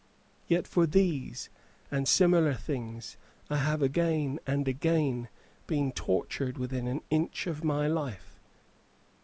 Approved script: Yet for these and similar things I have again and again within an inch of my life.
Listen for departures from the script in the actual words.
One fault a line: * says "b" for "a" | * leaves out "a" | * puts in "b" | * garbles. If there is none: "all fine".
* puts in "been tortured"